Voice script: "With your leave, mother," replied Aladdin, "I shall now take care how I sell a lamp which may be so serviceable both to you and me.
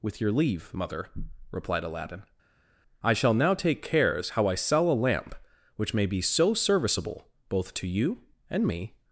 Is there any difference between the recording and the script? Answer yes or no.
yes